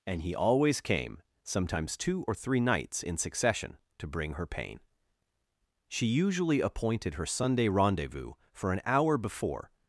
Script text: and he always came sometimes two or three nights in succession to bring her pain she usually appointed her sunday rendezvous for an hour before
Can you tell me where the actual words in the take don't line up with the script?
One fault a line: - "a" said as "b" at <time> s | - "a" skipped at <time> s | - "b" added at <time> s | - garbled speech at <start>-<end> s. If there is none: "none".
none